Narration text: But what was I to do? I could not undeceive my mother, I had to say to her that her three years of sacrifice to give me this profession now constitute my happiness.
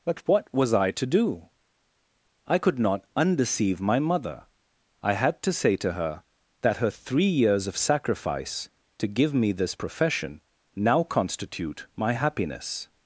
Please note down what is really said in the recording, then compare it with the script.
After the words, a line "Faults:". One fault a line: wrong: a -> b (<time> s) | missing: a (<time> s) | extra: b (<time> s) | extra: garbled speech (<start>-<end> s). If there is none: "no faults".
But what was I to do? I could not undeceive my mother, I had to say to her that her three years of sacrifice to give me this profession now constitute my happiness.
Faults:
no faults